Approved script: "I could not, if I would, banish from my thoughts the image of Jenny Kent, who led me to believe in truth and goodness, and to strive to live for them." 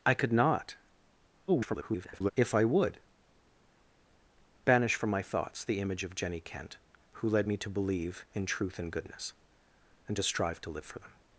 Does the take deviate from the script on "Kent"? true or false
false